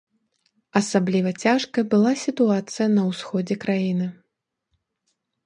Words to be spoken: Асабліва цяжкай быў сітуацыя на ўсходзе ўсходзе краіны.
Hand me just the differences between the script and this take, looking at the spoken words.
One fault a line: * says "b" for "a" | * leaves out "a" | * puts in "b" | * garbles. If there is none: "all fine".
* says "была" for "быў"
* leaves out "ўсходзе"